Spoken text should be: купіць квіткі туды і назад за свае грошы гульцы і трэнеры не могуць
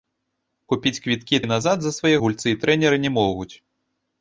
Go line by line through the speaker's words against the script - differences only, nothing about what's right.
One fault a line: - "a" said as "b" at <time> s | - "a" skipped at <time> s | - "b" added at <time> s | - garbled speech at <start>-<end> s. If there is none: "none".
- "туды" skipped at 1.4 s
- "грошы" skipped at 2.1 s